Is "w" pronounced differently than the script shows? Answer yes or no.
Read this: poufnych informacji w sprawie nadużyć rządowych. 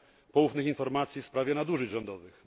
no